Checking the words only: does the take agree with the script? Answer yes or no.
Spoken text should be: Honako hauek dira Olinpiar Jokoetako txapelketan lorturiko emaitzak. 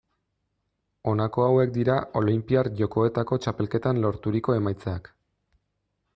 yes